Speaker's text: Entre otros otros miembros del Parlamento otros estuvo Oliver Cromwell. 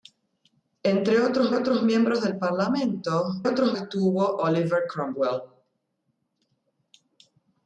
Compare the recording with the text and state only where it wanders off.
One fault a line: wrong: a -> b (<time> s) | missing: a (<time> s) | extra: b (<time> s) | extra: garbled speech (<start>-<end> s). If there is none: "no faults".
no faults